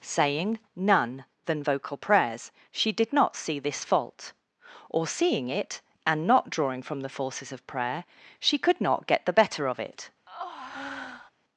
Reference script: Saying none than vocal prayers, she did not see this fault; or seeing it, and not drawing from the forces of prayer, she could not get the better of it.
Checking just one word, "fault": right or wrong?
right